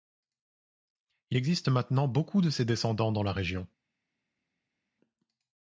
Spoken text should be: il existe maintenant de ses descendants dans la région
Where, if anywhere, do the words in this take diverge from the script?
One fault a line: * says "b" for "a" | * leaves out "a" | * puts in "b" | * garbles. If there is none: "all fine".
* puts in "beaucoup"